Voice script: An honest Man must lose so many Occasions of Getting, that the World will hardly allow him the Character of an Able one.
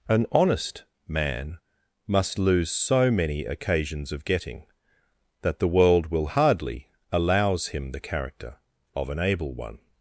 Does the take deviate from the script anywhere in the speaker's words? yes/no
yes